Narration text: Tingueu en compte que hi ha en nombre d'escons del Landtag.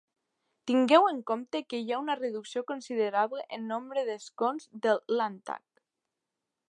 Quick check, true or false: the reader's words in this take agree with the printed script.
false